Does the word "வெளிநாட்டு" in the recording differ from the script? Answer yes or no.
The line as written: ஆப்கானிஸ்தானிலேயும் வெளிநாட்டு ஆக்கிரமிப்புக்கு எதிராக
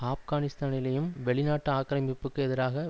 no